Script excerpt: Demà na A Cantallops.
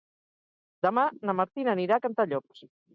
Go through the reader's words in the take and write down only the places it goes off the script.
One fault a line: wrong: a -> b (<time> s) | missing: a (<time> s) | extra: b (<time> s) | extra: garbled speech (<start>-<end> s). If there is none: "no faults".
extra: Martina anirà (1.4 s)